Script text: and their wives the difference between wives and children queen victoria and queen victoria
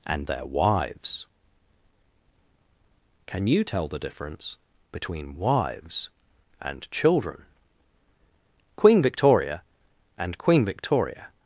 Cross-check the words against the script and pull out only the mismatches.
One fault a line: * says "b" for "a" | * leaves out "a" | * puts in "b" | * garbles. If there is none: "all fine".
* puts in "can you tell"